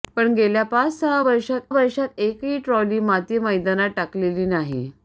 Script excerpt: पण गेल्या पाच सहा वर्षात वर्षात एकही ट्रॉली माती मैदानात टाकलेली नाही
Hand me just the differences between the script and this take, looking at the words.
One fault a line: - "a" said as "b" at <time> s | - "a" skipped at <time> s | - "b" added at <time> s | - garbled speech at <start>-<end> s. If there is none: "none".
none